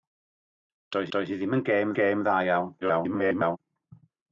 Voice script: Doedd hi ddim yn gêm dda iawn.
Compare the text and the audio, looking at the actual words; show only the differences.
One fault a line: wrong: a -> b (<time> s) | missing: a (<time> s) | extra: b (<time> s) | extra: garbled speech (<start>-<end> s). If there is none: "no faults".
extra: doedd (1.1 s)
extra: gêm (2.0 s)
extra: garbled speech (2.8-3.6 s)